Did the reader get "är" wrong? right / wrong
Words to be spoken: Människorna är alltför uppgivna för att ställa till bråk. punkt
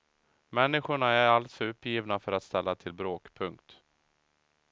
right